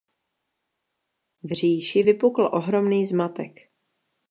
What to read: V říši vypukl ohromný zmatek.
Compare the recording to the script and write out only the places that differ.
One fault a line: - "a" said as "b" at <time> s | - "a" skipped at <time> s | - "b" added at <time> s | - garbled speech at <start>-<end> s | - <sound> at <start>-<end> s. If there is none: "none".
none